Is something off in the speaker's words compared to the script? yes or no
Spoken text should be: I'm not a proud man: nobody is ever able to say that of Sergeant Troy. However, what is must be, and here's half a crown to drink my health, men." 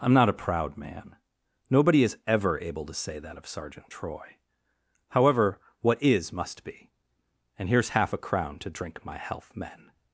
no